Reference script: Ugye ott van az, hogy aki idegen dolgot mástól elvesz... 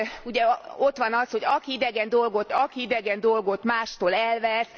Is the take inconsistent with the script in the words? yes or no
yes